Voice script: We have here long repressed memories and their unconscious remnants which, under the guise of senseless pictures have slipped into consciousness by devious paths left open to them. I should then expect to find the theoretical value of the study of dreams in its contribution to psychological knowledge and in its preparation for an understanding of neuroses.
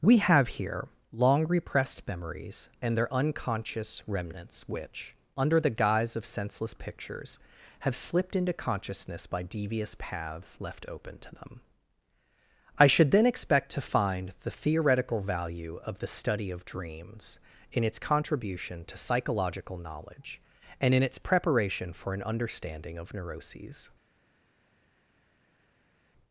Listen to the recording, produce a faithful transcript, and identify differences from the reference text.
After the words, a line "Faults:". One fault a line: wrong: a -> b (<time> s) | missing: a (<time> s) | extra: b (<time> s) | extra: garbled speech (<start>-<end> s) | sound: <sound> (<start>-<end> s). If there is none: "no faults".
We have here long repressed memories and their unconscious remnants which, under the guise of senseless pictures have slipped into consciousness by devious paths left open to them. I should then expect to find the theoretical value of the study of dreams in its contribution to psychological knowledge and in its preparation for an understanding of neuroses.
Faults:
no faults